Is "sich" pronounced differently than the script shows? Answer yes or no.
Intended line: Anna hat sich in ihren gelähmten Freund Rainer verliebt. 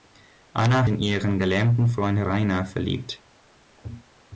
yes